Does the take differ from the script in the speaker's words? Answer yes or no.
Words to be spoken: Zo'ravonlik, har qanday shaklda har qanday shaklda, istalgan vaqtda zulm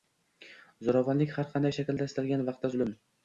yes